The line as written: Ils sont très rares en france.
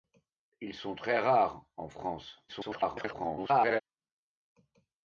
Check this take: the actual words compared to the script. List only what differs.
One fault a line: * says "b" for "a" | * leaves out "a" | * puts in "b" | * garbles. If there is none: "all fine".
* garbles